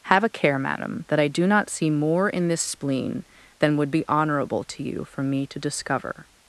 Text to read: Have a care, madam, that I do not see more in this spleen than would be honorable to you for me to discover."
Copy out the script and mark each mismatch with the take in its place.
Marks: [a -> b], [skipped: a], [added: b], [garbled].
Have a care, madam, that I do not see more in this spleen than would be honorable to you for me to discover."